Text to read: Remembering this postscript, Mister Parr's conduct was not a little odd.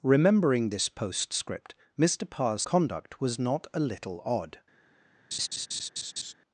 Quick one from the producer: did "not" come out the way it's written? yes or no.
yes